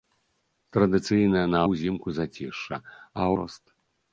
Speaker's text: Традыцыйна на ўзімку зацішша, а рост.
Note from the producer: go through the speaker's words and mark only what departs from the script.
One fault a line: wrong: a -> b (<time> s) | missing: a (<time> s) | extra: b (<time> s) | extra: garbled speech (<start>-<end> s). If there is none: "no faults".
no faults